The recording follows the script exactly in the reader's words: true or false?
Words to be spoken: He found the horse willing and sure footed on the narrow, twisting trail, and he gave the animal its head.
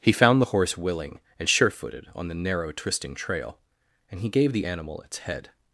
true